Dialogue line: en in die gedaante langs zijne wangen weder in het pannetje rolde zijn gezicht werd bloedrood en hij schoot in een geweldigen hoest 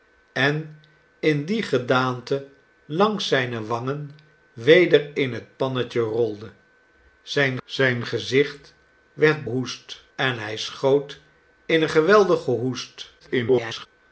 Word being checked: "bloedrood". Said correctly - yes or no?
no